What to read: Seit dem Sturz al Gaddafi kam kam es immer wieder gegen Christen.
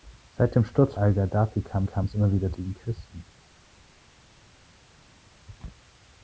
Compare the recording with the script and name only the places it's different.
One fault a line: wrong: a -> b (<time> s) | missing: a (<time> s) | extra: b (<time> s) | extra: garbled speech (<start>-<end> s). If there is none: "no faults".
no faults